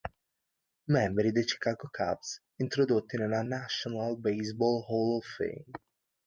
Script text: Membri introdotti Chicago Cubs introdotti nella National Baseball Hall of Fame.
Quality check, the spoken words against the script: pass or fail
fail